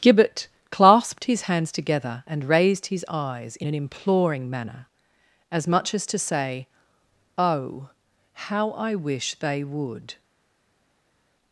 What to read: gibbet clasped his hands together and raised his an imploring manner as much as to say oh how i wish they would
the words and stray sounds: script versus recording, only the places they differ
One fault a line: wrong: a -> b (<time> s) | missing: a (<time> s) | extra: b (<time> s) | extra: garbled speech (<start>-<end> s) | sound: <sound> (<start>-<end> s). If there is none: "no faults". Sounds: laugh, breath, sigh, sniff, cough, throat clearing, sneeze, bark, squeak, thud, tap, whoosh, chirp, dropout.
extra: eyes in (3.1 s)